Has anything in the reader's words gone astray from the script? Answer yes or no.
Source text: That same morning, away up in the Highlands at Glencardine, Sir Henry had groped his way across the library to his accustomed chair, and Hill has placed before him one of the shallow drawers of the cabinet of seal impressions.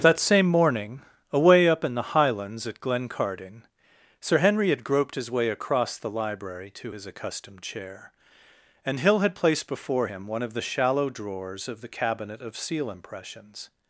yes